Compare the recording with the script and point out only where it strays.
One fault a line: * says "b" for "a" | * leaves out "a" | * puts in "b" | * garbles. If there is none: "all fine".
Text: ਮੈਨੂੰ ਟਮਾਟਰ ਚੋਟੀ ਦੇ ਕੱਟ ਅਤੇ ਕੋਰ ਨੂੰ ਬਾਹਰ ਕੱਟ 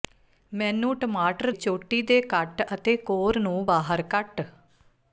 all fine